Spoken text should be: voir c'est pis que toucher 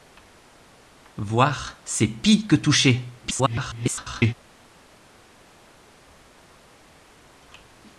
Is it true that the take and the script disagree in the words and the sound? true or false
true